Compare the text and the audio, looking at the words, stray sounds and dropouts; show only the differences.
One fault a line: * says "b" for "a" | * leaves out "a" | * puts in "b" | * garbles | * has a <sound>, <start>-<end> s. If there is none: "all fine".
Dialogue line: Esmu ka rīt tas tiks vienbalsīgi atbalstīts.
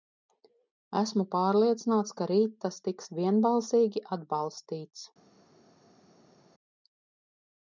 * puts in "pārliecināts"